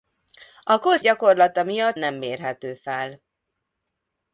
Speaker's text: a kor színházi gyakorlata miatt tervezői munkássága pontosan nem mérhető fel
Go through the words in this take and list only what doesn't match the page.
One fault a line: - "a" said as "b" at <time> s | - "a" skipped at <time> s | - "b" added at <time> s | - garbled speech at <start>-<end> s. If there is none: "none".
- "színházi" skipped at 1.0 s
- "tervezői munkássága pontosan" skipped at 2.0 s